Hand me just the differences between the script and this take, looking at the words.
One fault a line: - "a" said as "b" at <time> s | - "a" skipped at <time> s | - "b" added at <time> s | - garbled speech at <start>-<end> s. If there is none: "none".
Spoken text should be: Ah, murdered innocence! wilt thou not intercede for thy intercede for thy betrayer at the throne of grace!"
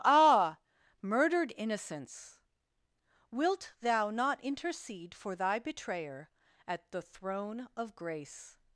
- "intercede for thy" skipped at 5.6 s